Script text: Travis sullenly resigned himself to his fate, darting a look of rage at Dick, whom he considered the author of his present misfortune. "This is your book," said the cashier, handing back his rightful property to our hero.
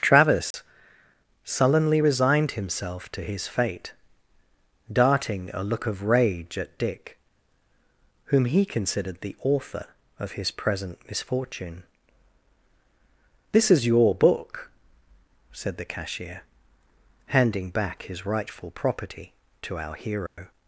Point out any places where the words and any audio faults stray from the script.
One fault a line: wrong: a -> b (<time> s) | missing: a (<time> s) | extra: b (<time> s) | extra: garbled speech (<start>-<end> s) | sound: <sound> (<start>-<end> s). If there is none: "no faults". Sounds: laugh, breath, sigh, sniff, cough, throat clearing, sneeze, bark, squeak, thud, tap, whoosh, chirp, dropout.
sound: dropout (0.5-0.5 s)
sound: dropout (20.3-20.4 s)